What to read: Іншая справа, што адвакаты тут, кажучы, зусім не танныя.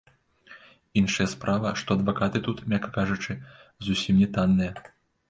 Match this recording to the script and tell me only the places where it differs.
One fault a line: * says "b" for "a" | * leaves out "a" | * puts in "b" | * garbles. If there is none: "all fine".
* puts in "мякка"